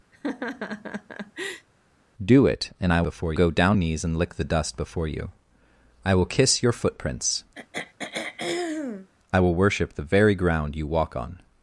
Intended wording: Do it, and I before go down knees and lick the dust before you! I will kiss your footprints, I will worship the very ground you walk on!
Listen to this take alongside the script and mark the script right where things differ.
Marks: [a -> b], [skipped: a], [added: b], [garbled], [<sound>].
[laugh] Do it, and I before go down knees and lick the dust before you! I will kiss your footprints, [throat clearing] I will worship the very ground you walk on!